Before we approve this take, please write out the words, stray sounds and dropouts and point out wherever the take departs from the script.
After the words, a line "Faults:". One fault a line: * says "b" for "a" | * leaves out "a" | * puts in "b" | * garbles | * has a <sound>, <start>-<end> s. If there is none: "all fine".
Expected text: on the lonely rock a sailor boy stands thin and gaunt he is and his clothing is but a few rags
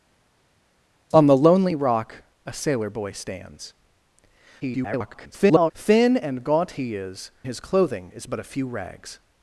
on the lonely rock a sailor boy stands [garbled] thin and gaunt he is his clothing is but a few rags
Faults:
* garbles
* leaves out "and"